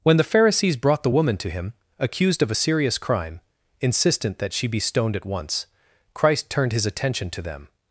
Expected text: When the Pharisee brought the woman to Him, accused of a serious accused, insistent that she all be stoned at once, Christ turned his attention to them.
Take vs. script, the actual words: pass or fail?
fail